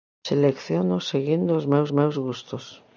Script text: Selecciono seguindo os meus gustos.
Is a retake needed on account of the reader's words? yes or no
yes